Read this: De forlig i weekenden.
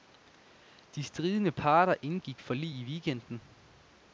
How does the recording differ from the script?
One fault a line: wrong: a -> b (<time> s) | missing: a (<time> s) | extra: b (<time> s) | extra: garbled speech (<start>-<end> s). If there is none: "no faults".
extra: stridende parter indgik (1.0 s)